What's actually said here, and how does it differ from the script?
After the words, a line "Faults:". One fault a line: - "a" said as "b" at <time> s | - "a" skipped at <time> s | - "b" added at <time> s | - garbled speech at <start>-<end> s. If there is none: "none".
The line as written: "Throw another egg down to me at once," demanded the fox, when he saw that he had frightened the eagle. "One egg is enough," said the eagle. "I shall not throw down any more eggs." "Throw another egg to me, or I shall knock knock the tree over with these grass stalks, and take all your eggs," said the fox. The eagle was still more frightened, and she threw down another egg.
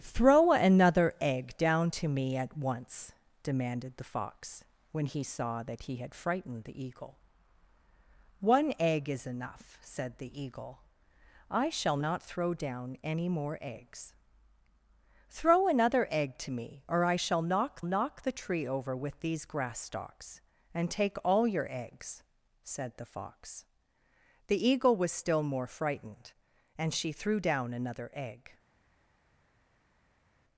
"Throw another egg down to me at once," demanded the fox, when he saw that he had frightened the eagle. "One egg is enough," said the eagle. "I shall not throw down any more eggs." "Throw another egg to me, or I shall knock knock the tree over with these grass stalks, and take all your eggs," said the fox. The eagle was still more frightened, and she threw down another egg.
Faults:
none